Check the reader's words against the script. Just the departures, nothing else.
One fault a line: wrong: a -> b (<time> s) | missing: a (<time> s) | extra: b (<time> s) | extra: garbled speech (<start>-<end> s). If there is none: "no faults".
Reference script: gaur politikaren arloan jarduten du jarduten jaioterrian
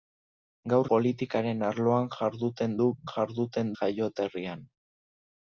no faults